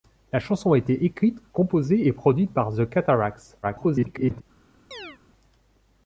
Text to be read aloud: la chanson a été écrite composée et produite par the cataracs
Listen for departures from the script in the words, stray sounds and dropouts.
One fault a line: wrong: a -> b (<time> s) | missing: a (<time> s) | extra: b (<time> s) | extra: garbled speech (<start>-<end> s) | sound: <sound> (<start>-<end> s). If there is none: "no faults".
extra: garbled speech (3.6-4.4 s)
sound: chirp (4.9-5.2 s)